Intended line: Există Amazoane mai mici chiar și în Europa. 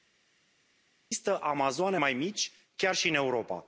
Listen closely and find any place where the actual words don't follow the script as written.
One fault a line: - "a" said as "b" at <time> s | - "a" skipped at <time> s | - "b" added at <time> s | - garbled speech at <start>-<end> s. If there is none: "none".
none